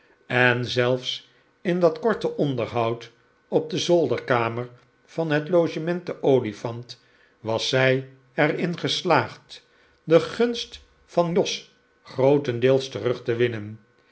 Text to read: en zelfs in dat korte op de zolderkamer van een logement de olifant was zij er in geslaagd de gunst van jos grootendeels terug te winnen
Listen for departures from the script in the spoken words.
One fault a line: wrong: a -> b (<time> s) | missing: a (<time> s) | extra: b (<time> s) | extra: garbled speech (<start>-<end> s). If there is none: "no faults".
extra: onderhoud (2.4 s)
wrong: een -> het (5.3 s)